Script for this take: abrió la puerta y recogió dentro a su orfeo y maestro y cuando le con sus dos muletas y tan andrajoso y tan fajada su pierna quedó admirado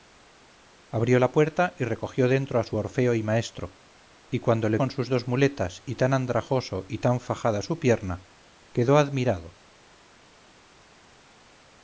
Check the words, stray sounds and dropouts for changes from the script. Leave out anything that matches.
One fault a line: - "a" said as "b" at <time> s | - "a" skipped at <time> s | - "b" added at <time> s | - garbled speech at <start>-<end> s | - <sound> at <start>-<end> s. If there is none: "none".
none